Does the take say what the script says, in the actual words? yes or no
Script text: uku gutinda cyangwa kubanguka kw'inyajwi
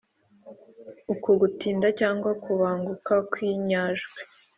yes